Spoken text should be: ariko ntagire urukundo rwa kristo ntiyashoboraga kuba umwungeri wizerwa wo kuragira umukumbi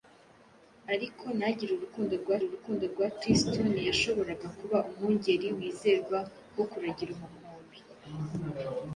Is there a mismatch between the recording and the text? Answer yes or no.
yes